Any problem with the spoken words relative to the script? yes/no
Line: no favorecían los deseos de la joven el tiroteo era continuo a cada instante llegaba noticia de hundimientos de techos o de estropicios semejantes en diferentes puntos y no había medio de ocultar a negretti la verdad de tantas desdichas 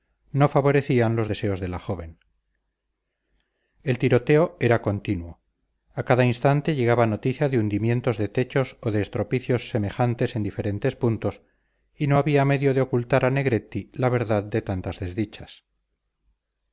no